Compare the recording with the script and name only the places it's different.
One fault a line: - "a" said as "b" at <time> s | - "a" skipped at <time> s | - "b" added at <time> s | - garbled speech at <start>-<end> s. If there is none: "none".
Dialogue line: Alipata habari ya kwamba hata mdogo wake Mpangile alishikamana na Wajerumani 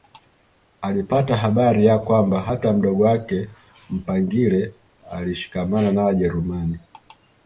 none